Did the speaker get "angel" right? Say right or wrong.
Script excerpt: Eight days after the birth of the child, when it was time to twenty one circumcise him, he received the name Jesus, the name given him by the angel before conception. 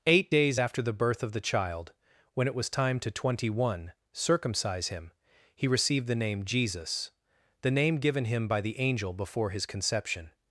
right